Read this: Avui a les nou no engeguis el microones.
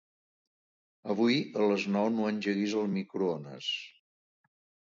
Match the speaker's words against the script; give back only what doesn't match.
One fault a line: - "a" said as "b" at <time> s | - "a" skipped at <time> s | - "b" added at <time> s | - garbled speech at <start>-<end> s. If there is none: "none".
none